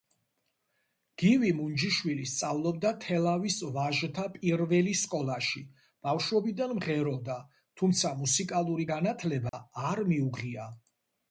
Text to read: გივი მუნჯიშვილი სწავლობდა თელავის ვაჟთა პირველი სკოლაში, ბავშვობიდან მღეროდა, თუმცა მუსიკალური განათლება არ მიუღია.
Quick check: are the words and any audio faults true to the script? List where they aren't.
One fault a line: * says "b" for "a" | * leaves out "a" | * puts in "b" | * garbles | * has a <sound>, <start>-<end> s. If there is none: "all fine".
* has a dropout, 9.5-9.5 s